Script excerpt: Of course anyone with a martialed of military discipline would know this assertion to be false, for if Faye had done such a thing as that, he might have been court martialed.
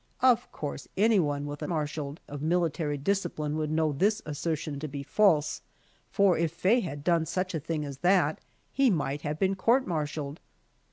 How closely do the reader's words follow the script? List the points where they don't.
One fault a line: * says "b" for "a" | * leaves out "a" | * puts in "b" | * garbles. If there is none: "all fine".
all fine